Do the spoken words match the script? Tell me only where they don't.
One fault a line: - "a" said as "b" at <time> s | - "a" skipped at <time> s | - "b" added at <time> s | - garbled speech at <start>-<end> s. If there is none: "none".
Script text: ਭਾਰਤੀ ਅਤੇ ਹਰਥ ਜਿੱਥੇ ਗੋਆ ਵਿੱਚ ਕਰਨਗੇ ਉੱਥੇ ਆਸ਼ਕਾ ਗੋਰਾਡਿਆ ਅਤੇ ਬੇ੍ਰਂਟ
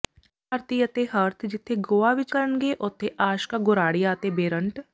none